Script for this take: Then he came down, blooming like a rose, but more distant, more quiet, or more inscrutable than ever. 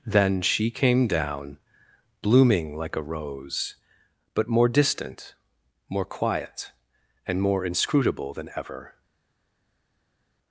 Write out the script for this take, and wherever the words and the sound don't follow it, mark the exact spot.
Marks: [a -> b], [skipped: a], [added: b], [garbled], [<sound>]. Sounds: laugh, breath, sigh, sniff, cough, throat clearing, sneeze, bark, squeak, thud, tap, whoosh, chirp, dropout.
Then [he -> she] came down, blooming like a rose, but more distant, more quiet, [or -> and] more inscrutable than ever.